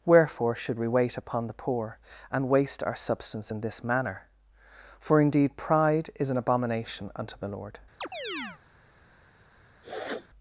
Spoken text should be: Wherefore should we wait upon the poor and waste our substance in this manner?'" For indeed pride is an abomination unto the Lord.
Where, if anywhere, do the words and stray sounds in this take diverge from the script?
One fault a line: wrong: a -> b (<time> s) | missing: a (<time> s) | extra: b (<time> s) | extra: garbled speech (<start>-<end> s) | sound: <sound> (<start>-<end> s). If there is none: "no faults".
sound: chirp (8.0-8.6 s)
sound: sniff (9.8-10.3 s)